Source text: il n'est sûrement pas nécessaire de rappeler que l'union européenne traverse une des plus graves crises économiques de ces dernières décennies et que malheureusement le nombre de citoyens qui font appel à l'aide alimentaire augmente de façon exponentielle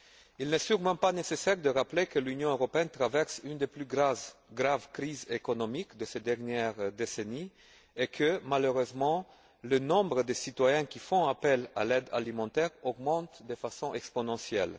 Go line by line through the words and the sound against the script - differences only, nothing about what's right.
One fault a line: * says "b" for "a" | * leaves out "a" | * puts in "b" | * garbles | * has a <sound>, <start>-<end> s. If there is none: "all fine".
all fine